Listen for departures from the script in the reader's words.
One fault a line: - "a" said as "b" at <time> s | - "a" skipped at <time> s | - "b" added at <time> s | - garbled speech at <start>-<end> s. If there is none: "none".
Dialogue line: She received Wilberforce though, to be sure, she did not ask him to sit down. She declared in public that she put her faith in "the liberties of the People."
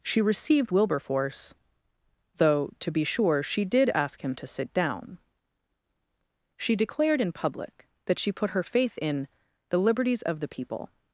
- "not" skipped at 3.9 s